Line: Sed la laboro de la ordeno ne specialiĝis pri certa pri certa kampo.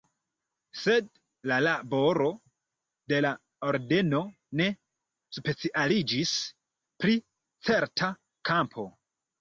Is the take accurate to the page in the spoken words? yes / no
no